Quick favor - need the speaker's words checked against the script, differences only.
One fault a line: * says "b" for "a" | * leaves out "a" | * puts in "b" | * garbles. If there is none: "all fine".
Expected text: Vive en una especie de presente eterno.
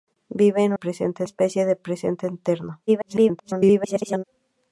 * says "presente" for "una"
* garbles